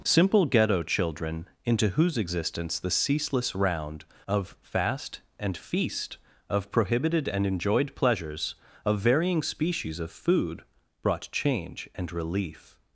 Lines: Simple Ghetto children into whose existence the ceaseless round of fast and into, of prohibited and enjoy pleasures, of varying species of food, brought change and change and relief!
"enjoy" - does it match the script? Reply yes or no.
no